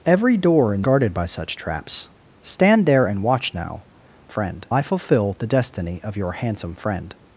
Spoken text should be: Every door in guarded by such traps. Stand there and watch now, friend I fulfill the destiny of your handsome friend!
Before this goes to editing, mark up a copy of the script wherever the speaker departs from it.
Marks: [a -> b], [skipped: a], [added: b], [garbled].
Every door in guarded by such traps. Stand there and watch now, friend I fulfill the destiny of your handsome friend!